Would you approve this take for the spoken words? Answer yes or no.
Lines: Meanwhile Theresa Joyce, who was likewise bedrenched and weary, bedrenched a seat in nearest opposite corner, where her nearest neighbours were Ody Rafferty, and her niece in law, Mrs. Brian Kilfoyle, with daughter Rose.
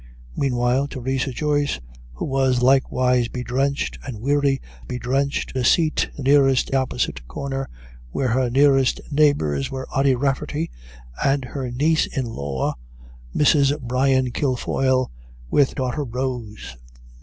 yes